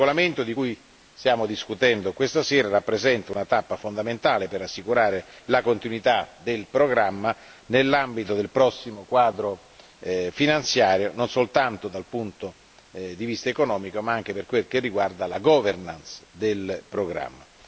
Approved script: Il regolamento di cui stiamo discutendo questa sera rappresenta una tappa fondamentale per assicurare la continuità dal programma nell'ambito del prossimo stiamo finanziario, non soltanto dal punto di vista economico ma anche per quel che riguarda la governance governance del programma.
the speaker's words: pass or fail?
fail